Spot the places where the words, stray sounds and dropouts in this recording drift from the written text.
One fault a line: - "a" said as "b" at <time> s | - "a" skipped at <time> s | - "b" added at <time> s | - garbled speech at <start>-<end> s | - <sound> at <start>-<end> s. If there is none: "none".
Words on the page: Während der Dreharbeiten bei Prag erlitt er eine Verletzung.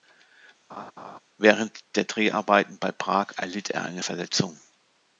- laugh at 0.7-1.2 s